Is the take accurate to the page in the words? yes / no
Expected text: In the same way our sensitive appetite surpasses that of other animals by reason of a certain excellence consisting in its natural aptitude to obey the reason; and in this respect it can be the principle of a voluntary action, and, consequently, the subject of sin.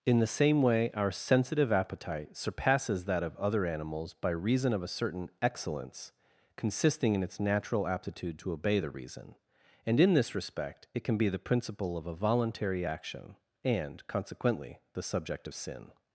yes